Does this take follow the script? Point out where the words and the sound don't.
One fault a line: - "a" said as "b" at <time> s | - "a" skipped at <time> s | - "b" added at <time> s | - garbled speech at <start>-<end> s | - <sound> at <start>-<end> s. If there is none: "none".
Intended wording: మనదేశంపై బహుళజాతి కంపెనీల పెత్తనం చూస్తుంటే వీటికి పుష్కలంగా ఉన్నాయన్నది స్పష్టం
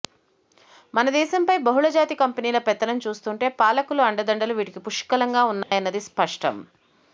- "పాలకుల అండదండలు" added at 3.6 s
- dropout at 5.6-5.7 s